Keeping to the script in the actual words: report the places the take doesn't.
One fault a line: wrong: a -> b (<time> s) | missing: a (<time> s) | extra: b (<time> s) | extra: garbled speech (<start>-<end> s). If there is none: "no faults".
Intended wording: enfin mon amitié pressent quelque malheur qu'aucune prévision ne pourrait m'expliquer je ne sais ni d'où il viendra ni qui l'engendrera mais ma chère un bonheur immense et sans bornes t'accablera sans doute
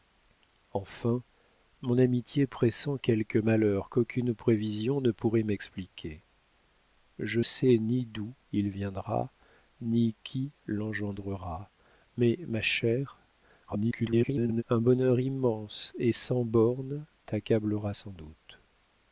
missing: ne (7.4 s)
extra: garbled speech (13.7-14.6 s)